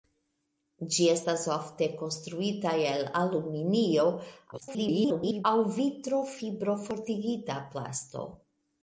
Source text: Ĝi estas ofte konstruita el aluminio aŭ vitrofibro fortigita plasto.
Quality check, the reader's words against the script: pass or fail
fail